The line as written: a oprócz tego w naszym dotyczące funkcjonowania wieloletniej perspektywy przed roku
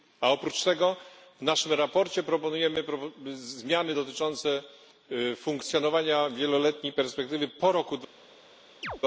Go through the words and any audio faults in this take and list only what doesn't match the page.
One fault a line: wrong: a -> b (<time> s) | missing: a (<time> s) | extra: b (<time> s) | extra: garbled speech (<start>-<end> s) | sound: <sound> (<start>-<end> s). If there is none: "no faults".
extra: sprawozdaniu proponujemy zmiany (1.7 s)
wrong: przed -> po (7.5 s)
sound: chirp (8.8-9.0 s)